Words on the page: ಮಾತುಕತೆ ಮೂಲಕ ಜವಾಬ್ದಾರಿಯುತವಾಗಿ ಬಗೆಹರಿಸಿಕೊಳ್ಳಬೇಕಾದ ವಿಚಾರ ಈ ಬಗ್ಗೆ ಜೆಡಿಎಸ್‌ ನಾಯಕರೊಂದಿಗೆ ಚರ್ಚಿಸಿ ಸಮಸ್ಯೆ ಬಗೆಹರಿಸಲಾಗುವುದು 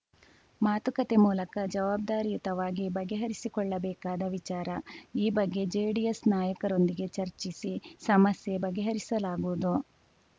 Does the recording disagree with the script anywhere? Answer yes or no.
no